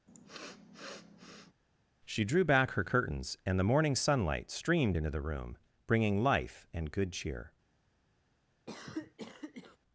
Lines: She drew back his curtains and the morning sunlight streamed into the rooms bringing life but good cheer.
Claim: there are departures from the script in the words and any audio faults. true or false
true